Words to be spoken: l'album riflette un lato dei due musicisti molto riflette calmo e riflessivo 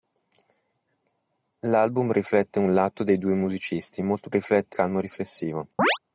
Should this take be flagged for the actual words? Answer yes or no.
no